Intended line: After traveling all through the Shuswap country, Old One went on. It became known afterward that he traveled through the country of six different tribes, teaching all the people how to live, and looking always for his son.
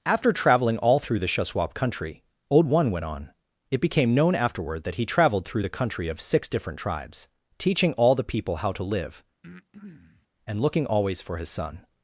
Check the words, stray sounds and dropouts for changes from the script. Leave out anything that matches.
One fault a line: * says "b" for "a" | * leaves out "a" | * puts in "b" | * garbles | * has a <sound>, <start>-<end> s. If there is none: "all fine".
* has a breath, 9.4-10.3 s